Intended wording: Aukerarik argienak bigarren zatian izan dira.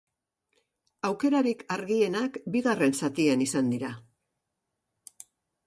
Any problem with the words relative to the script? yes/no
no